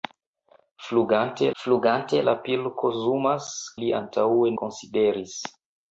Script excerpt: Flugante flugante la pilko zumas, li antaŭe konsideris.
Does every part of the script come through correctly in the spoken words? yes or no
yes